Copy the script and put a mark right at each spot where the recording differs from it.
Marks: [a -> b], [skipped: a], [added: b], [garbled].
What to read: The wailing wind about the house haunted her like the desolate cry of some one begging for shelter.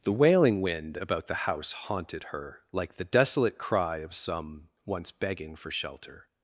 The wailing wind about the house haunted her like the desolate cry of some [one -> once] begging for shelter.